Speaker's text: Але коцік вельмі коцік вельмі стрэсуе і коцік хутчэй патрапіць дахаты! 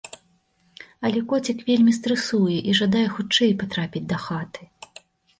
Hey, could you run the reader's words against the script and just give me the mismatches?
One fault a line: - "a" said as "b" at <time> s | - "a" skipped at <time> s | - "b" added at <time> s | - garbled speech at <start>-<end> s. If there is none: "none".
- "коцік вельмі" skipped at 1.9 s
- "коцік" said as "жадае" at 2.8 s